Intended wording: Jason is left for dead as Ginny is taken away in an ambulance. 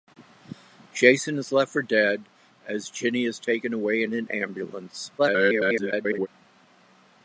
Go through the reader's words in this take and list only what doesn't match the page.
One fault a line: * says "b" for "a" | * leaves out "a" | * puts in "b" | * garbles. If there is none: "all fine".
* garbles